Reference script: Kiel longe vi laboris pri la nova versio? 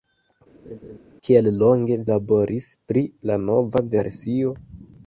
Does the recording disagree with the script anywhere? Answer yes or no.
yes